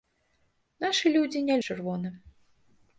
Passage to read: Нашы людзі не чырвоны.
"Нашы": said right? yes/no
yes